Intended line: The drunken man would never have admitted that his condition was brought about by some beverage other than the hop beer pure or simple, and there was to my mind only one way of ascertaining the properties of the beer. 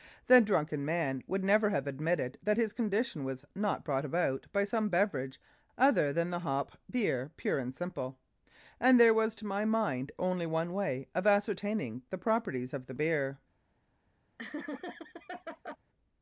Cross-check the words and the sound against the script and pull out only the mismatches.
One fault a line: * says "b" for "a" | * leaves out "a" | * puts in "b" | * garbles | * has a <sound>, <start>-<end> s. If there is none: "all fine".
* puts in "not"
* says "and" for "or"
* has a laugh, 14.4-15.8 s